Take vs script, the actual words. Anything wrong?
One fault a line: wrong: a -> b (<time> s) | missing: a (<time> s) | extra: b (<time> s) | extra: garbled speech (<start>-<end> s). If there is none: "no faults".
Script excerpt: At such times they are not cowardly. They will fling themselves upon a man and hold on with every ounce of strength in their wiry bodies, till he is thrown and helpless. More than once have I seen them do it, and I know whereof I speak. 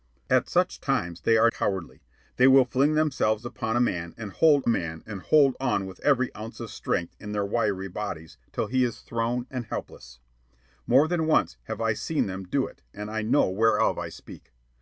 missing: not (1.5 s)
extra: man and hold (4.7 s)